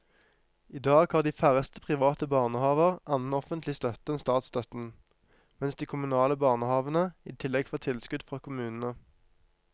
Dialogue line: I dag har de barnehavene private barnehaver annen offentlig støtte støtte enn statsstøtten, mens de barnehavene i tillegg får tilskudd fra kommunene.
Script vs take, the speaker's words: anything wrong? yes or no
yes